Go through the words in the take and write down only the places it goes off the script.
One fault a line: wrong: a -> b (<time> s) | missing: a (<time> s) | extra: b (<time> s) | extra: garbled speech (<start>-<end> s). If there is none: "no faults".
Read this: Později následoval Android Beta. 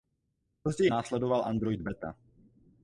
no faults